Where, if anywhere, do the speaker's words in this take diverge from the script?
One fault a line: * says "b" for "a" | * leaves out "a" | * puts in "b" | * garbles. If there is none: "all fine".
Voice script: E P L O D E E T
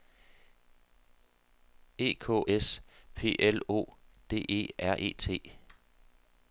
* puts in "K S"
* puts in "R"